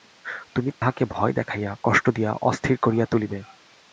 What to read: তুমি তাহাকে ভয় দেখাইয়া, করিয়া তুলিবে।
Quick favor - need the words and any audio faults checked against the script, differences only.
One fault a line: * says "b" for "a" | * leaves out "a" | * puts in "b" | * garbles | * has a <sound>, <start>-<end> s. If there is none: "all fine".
* has a dropout, 0.7-0.8 s
* puts in "কষ্ট দিয়া অস্থির"